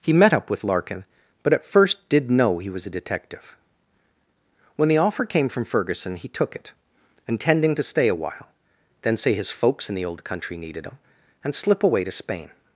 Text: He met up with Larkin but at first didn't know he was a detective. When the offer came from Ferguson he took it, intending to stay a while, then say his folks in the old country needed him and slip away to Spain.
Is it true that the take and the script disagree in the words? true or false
true